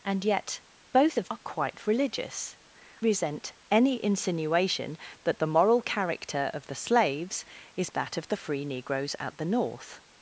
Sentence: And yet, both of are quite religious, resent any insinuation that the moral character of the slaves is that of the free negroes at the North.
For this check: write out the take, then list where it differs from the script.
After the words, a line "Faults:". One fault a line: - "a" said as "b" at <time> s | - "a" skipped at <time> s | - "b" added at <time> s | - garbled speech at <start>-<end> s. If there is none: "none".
And yet, both of are quite religious, resent any insinuation that the moral character of the slaves is that of the free negroes at the North.
Faults:
none